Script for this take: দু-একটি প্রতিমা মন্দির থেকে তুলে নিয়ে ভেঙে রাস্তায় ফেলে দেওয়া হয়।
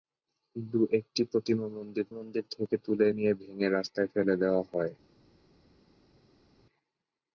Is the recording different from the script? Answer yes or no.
yes